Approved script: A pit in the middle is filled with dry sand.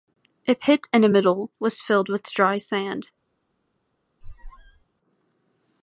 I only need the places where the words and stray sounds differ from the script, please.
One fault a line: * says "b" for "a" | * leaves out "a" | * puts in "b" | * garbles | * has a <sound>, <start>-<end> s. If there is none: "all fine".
* says "was" for "is"
* has a squeak, 4.2-4.8 s